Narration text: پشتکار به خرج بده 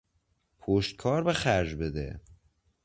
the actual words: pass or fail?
pass